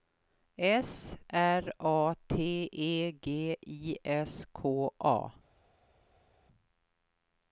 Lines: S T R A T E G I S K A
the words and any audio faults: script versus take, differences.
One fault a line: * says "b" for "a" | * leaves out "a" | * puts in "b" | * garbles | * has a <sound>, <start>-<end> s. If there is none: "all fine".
* leaves out "T"